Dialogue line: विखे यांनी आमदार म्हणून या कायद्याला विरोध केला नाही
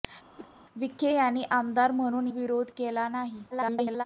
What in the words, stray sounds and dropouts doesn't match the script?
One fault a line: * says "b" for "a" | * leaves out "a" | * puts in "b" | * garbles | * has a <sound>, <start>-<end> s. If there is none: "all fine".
* has a whoosh, 0.4-0.5 s
* leaves out "या कायद्याला"
* garbles